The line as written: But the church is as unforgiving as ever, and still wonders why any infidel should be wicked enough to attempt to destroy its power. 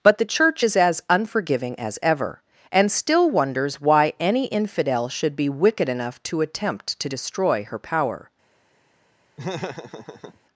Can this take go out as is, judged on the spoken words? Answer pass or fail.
fail